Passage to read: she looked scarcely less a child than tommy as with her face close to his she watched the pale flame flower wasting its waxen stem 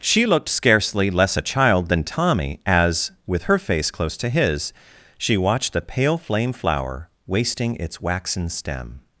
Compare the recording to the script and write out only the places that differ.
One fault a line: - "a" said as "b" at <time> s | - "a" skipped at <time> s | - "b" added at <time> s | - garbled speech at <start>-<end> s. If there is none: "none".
none